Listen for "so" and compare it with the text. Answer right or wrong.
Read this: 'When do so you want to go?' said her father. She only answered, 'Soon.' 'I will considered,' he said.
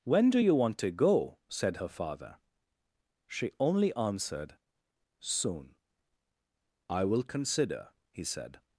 wrong